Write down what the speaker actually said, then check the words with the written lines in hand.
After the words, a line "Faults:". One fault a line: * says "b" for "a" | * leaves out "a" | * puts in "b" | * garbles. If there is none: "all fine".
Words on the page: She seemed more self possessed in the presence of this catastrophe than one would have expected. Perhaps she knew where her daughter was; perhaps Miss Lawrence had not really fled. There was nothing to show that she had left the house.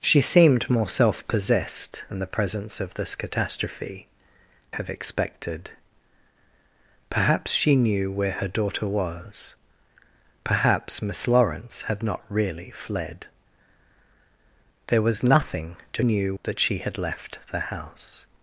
She seemed more self possessed in the presence of this catastrophe have expected. Perhaps she knew where her daughter was; perhaps Miss Lawrence had not really fled. There was nothing to knew that she had left the house.
Faults:
* leaves out "than one would"
* says "knew" for "show"